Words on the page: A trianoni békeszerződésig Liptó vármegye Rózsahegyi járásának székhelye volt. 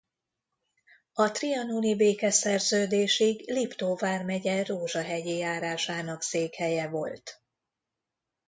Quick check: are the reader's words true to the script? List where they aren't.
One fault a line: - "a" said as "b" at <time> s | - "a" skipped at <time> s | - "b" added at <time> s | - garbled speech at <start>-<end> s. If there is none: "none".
none